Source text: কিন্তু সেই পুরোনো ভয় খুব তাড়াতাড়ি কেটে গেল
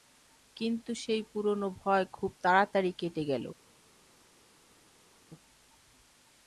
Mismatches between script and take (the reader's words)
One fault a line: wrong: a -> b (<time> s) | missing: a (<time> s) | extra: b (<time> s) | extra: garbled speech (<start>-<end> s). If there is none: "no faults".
no faults